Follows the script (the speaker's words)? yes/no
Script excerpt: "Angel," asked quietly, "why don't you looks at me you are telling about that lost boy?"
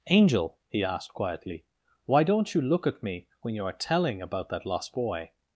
no